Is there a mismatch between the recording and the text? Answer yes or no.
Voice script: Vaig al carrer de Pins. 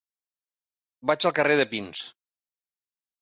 no